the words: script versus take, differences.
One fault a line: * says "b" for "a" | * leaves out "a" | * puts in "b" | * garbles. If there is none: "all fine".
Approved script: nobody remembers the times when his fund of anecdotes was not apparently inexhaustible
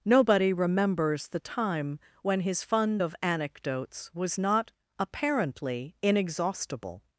* says "time" for "times"